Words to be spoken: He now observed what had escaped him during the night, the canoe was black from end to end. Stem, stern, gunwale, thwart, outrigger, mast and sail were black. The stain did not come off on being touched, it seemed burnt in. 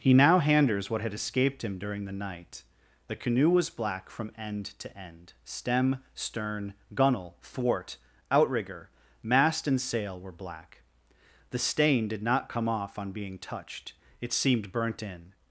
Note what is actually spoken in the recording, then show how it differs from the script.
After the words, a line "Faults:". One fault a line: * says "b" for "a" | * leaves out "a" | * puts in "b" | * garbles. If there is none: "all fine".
He now handers what had escaped him during the night, the canoe was black from end to end. Stem, stern, gunwale, thwart, outrigger, mast and sail were black. The stain did not come off on being touched, it seemed burnt in.
Faults:
* says "handers" for "observed"